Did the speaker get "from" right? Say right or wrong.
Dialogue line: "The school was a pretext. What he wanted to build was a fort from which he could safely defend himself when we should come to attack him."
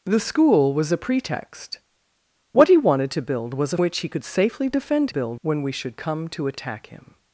wrong